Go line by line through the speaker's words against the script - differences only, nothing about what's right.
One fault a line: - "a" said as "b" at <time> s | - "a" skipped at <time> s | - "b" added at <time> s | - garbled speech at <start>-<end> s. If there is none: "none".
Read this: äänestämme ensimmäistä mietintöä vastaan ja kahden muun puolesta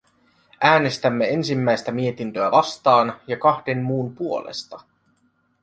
none